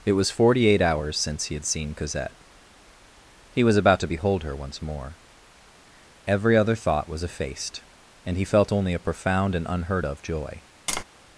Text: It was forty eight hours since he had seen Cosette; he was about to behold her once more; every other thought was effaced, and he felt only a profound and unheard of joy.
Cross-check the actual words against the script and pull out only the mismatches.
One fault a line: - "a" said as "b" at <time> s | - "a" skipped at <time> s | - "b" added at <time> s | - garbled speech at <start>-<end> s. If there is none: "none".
none